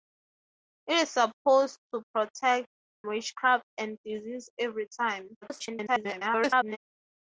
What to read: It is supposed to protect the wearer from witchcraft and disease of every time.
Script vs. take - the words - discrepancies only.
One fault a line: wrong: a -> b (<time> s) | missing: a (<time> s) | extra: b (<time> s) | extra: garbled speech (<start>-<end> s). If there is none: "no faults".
missing: the wearer from (2.7 s)
missing: of (4.5 s)
extra: garbled speech (5.4-6.8 s)